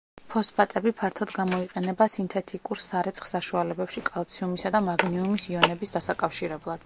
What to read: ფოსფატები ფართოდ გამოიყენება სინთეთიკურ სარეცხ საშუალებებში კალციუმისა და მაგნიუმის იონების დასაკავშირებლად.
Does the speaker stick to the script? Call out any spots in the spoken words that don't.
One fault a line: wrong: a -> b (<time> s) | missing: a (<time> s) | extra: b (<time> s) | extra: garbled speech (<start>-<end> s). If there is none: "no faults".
no faults